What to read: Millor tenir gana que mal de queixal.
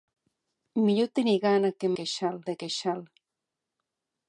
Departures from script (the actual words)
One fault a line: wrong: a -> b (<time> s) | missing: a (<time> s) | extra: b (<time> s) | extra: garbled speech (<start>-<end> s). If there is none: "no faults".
wrong: mal -> queixal (2.0 s)